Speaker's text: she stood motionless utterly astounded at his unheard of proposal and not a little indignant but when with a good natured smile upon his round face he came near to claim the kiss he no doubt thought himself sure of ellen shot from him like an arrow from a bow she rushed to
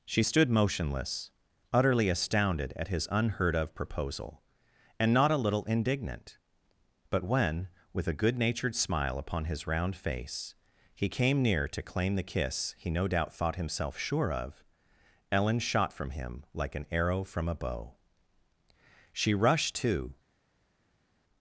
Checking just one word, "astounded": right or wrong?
right